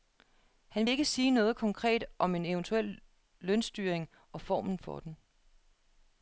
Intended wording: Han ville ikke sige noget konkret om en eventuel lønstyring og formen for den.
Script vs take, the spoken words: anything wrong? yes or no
yes